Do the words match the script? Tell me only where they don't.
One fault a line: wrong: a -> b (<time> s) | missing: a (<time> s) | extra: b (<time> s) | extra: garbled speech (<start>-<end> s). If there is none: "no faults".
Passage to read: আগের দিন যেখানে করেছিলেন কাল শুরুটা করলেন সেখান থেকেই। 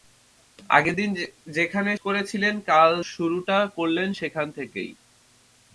no faults